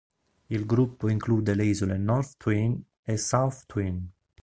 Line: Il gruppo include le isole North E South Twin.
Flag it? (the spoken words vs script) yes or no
yes